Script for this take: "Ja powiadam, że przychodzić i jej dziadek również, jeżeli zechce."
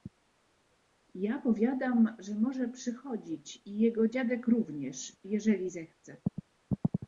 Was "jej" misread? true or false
true